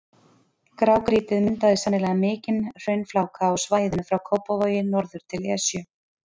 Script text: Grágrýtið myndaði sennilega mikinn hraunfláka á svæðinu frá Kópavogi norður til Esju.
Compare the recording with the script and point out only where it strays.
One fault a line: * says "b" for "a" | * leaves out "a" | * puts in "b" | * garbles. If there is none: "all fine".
all fine